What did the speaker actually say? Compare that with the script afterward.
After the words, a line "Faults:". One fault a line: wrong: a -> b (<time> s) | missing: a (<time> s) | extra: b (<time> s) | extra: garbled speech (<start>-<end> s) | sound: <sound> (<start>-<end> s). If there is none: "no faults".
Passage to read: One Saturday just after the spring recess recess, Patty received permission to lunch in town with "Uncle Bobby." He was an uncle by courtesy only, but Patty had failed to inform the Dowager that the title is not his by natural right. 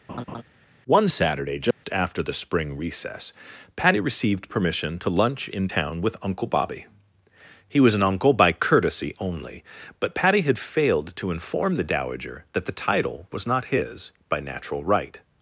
One Saturday just after the spring recess, Patty received permission to lunch in town with "Uncle Bobby." He was an uncle by courtesy only, but Patty had failed to inform the Dowager that the title was not his by natural right.
Faults:
sound: laugh (0.1-0.4 s)
sound: dropout (1.7-1.8 s)
missing: recess (3.3 s)
wrong: is -> was (13.3 s)